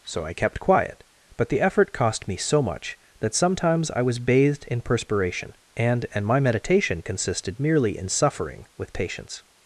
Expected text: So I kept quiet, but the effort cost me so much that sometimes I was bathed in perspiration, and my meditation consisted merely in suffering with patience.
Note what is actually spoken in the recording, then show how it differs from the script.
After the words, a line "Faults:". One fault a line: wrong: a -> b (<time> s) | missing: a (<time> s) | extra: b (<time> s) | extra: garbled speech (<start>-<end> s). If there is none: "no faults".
So I kept quiet, but the effort cost me so much that sometimes I was bathed in perspiration, and and my meditation consisted merely in suffering with patience.
Faults:
extra: and (6.1 s)